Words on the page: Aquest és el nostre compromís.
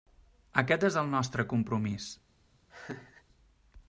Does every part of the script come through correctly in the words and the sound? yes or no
no